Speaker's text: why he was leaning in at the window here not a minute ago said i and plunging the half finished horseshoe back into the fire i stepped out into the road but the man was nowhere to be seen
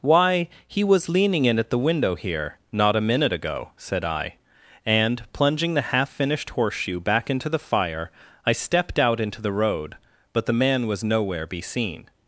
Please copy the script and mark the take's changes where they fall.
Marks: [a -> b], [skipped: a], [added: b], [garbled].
why he was leaning in at the window here not a minute ago said i and plunging the half finished horseshoe back into the fire i stepped out into the road but the man was nowhere [skipped: to] be seen